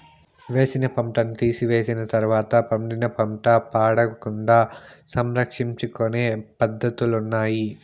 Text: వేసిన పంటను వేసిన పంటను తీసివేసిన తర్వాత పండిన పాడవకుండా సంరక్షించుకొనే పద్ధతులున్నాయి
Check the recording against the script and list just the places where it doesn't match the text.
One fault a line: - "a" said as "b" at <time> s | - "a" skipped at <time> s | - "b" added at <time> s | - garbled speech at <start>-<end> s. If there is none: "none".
- "వేసిన పంటను" skipped at 1.4 s
- "పంట" added at 3.2 s